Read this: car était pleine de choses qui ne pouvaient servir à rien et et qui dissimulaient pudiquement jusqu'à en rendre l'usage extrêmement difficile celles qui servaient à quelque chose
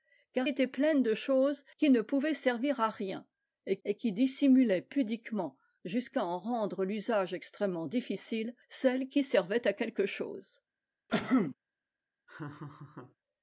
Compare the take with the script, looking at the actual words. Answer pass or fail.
pass